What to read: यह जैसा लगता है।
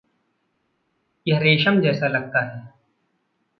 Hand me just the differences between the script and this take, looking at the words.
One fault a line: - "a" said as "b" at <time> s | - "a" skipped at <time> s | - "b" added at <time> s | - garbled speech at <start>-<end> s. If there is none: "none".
- "रेशम" added at 1.4 s